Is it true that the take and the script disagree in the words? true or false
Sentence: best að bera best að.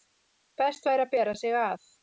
true